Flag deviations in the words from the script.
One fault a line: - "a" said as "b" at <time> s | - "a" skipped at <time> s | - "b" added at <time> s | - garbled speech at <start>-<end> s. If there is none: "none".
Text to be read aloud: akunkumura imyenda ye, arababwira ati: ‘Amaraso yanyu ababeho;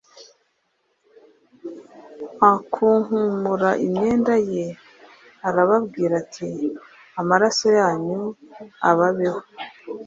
none